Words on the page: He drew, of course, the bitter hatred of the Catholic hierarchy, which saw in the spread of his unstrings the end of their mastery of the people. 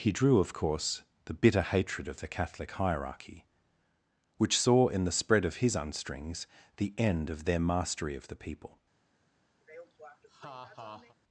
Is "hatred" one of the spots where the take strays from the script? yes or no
no